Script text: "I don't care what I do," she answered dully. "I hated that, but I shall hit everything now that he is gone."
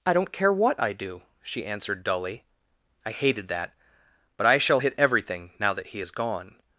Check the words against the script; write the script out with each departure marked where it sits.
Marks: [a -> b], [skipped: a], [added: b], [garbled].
"I don't care what I do," she answered dully. "I hated that, but I shall hit everything now that he is gone."